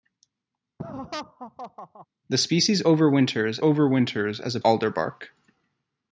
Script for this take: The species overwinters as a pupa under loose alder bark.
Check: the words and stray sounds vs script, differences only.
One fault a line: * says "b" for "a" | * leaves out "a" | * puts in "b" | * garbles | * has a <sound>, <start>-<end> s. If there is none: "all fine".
* has a laugh, 0.8-2.1 s
* puts in "overwinters"
* leaves out "pupa under loose"